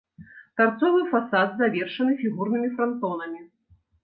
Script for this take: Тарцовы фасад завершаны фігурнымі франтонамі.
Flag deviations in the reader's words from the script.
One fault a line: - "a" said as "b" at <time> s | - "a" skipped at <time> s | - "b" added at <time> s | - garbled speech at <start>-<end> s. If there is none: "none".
none